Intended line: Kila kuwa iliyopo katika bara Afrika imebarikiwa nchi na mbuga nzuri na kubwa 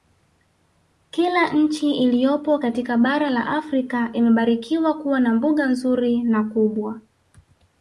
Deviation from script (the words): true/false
true